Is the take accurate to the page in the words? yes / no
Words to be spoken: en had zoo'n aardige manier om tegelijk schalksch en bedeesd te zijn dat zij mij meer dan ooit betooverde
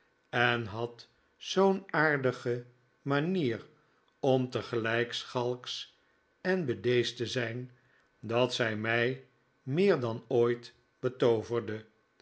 yes